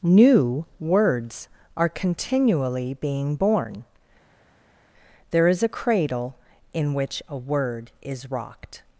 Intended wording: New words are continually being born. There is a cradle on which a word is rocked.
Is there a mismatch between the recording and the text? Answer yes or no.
yes